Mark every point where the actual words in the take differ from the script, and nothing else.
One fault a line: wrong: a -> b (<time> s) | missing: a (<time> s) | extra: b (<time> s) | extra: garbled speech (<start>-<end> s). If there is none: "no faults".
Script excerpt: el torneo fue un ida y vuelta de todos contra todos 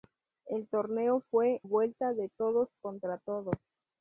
missing: un ida y (1.6 s)